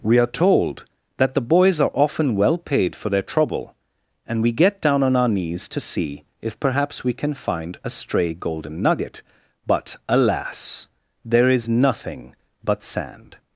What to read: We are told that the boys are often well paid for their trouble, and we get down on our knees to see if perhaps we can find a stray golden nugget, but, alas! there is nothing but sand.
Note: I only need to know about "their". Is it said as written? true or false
true